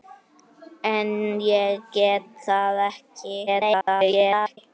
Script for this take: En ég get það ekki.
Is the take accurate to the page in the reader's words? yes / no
no